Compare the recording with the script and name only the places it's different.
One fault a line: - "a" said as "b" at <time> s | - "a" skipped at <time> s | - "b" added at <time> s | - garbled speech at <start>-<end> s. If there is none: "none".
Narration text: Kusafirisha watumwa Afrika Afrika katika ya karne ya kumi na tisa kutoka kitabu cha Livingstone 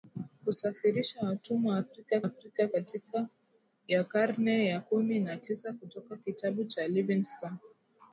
none